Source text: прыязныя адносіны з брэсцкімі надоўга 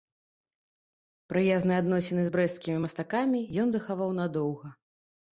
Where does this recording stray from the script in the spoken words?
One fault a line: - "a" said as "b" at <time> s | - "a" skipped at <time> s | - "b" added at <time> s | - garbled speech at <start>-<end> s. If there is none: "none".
- "мастакамі ён захаваў" added at 2.8 s